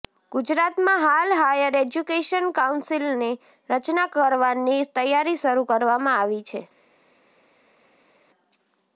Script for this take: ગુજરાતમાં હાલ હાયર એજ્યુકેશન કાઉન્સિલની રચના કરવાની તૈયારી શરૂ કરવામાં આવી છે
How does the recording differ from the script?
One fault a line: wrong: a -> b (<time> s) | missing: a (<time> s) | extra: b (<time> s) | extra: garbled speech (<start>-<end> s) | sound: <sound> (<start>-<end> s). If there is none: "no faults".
no faults